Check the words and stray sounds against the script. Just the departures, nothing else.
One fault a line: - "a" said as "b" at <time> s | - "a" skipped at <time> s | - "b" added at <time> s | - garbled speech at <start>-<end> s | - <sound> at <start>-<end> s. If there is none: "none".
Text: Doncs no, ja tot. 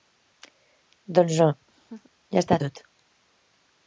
- laugh at 1.7-2.1 s
- "està" added at 2.4 s